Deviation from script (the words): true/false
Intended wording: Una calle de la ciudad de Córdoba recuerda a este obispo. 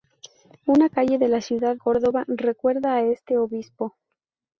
true